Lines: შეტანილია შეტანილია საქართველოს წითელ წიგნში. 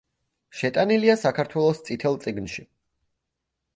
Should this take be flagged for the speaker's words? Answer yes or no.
yes